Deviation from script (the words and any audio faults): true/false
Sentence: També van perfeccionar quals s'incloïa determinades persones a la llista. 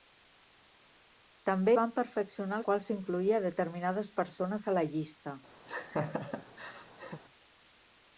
true